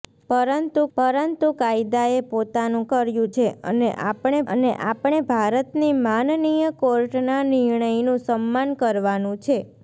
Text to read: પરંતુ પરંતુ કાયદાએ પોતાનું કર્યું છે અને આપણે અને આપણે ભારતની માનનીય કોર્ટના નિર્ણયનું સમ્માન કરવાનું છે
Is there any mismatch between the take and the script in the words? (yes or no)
no